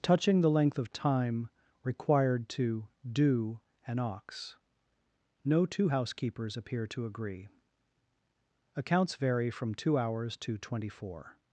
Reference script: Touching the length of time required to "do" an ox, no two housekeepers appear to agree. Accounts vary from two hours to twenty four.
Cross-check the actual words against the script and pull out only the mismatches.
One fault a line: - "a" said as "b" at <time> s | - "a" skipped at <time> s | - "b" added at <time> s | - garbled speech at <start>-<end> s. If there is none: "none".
none